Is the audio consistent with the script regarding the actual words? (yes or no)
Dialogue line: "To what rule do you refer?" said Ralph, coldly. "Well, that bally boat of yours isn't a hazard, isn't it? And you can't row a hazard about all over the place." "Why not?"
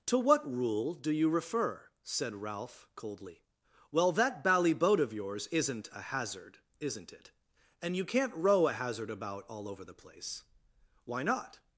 yes